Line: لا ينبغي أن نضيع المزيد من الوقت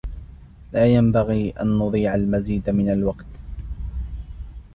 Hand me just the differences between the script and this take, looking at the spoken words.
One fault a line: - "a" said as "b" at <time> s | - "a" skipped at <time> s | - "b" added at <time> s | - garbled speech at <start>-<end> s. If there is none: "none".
none